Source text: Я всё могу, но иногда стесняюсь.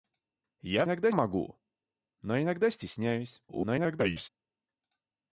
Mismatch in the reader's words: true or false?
true